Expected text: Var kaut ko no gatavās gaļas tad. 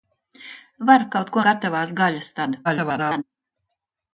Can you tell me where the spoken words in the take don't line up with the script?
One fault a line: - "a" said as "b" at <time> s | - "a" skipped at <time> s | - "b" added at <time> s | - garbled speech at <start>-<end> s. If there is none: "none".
- "no" skipped at 1.4 s
- garbled speech at 2.6-3.2 s